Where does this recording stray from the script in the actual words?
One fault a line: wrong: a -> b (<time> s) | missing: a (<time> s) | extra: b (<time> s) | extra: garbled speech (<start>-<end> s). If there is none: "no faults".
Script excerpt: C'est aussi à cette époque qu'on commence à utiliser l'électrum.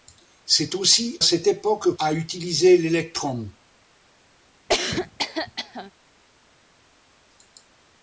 missing: à (1.2 s)
missing: qu'on commence (2.0 s)